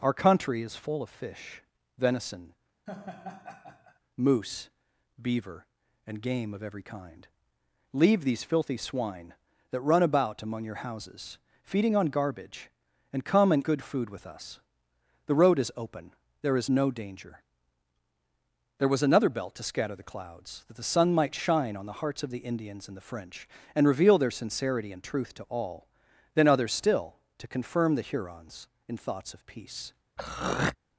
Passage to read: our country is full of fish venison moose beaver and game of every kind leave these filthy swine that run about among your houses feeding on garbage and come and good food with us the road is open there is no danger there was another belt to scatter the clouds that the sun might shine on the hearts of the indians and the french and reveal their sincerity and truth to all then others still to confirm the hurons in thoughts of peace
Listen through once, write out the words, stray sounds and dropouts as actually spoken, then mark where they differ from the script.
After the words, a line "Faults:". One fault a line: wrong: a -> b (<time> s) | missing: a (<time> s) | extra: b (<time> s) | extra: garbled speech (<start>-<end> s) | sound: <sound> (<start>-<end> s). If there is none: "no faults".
our country is full of fish venison moose beaver and game of every kind leave these filthy swine that run about among your houses feeding on garbage and come and good food with us the road is open there is no danger there was another belt to scatter the clouds that the sun might shine on the hearts of the indians and the french and reveal their sincerity and truth to all then others still to confirm the hurons in thoughts of peace
Faults:
sound: laugh (2.9-4.0 s)
sound: throat clearing (30.2-30.8 s)